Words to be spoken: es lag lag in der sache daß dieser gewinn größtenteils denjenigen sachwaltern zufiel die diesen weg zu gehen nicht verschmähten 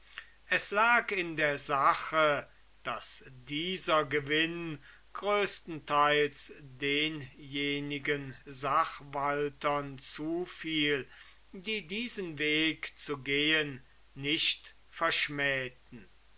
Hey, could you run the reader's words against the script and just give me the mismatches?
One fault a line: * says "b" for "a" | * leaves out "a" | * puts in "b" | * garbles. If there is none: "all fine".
* leaves out "lag"